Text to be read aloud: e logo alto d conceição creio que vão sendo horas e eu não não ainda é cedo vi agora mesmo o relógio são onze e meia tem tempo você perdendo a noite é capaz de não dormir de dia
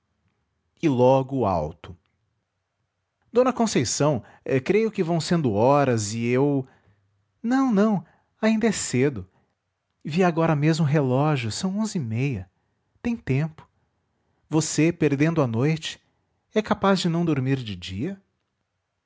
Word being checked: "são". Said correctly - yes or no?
yes